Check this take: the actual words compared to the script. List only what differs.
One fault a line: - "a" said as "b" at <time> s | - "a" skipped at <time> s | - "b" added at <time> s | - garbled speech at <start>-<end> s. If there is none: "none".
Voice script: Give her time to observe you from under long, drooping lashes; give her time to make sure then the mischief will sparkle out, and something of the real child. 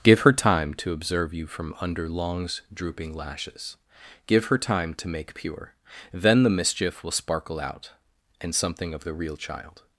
- "long" said as "longs" at 2.1 s
- "sure" said as "pure" at 5.3 s